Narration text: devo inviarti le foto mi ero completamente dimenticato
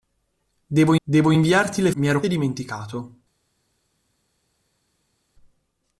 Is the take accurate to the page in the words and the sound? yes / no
no